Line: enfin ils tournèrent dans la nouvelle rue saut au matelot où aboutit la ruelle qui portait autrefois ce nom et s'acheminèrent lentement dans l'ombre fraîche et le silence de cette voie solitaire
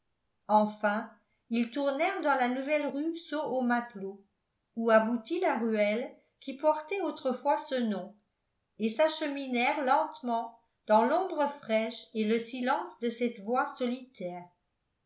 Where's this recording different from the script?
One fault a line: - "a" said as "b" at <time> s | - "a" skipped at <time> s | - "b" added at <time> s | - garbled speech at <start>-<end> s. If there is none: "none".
none